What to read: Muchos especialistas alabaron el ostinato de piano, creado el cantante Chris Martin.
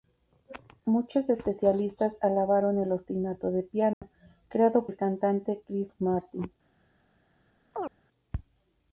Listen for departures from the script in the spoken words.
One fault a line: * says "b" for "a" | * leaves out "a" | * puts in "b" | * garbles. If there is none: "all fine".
all fine